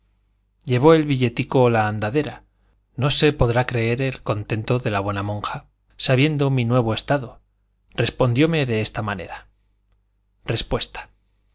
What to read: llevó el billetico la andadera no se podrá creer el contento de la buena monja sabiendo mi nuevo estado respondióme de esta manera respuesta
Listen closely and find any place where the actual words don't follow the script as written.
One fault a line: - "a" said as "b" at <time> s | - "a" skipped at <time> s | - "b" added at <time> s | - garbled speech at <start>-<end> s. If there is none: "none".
none